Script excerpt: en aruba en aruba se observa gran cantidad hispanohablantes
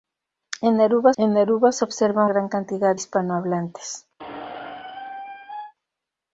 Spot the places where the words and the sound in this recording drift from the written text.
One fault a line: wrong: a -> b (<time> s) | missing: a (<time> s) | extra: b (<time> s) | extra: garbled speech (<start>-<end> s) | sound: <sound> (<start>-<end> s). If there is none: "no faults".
sound: squeak (4.2-5.7 s)